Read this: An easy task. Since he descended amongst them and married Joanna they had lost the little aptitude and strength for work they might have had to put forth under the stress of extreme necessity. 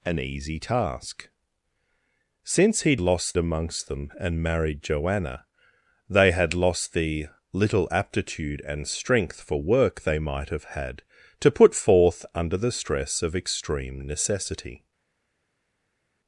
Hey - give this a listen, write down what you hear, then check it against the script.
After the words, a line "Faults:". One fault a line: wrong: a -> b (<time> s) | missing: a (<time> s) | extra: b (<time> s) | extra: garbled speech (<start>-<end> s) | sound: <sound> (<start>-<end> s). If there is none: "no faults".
An easy task. Since he lost amongst them and married Joanna they had lost the little aptitude and strength for work they might have had to put forth under the stress of extreme necessity.
Faults:
wrong: descended -> lost (3.0 s)